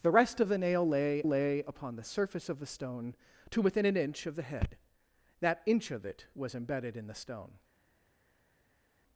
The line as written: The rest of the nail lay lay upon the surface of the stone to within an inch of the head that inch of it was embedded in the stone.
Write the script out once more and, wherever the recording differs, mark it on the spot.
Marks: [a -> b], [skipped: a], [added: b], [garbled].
The rest of the nail lay lay upon the surface of the stone to within an inch of the head that inch of it was embedded in the stone.